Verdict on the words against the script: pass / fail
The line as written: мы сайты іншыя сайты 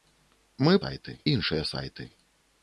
pass